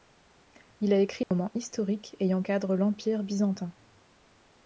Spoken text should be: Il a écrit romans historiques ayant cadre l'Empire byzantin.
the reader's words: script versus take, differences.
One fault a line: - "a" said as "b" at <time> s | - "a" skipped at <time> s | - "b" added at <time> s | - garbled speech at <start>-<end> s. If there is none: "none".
none